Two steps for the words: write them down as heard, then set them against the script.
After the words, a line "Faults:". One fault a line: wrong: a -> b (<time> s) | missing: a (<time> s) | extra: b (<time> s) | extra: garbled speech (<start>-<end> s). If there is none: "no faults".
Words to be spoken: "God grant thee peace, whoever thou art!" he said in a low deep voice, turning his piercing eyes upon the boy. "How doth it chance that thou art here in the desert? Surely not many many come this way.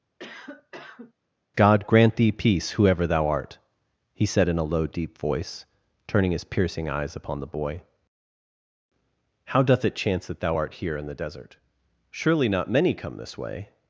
"God grant thee peace, whoever thou art!" he said in a low deep voice, turning his piercing eyes upon the boy. "How doth it chance that thou art here in the desert? Surely not many come this way.
Faults:
missing: many (12.9 s)